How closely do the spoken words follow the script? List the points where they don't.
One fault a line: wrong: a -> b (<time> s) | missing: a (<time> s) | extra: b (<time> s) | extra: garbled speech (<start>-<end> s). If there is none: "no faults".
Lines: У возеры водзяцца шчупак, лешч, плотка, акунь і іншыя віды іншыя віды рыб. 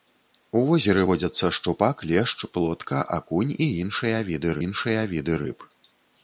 no faults